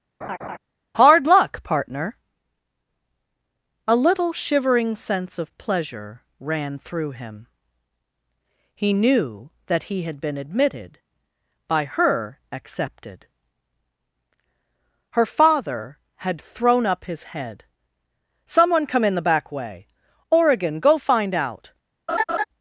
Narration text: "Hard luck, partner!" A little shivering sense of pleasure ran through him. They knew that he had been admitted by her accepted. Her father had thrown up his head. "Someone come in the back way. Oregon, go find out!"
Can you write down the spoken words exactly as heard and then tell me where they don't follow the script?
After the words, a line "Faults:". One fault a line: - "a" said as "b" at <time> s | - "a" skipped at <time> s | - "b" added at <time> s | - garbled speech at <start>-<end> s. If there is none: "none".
"Hard luck, partner!" A little shivering sense of pleasure ran through him. He knew that he had been admitted by her accepted. Her father had thrown up his head. "Someone come in the back way. Oregon, go find out!"
Faults:
- "They" said as "He" at 8.7 s